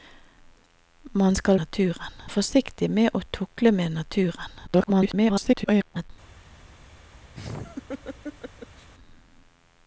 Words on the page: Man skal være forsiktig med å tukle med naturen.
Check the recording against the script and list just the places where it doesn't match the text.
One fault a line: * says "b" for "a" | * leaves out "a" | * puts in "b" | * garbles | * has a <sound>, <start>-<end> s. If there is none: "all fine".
* says "naturen" for "være"
* garbles
* has a laugh, 7.3-8.9 s